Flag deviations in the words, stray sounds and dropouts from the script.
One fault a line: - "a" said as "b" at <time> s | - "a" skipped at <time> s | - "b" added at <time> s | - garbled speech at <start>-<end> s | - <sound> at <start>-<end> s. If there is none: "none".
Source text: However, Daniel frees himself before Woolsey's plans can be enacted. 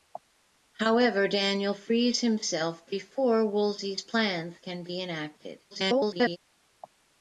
- garbled speech at 5.7-6.4 s